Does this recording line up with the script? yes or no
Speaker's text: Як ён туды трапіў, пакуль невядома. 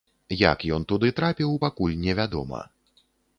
yes